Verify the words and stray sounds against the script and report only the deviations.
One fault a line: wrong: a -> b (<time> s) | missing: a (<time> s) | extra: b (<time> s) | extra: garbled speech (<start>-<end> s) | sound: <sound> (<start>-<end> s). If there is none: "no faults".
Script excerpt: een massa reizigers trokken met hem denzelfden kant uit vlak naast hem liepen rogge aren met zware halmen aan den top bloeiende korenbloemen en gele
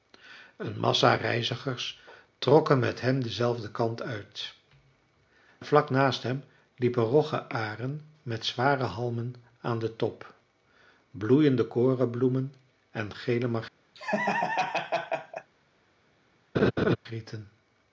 sound: laugh (13.9-15.5 s)
sound: laugh (16.5-17.0 s)